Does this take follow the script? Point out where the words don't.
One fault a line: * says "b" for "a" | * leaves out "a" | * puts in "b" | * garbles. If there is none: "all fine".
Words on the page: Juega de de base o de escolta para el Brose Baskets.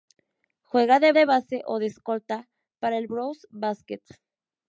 all fine